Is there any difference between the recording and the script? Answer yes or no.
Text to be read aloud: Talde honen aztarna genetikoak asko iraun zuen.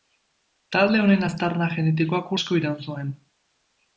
no